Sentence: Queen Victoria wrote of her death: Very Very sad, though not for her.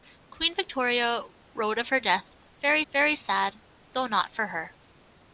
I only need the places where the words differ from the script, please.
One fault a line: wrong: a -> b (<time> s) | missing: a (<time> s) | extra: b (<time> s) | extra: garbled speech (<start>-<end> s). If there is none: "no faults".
no faults